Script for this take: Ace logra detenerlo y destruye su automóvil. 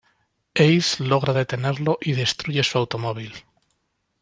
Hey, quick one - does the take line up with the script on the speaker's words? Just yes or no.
yes